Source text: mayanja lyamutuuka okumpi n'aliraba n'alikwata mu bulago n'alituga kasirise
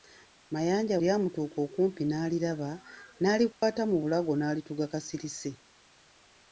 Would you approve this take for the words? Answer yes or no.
yes